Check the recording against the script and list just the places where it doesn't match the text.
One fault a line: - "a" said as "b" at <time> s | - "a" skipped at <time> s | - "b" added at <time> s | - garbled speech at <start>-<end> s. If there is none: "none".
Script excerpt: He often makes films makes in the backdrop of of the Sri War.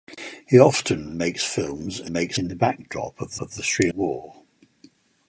none